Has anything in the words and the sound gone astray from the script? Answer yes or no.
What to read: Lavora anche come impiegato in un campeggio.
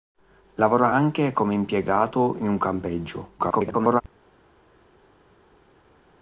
yes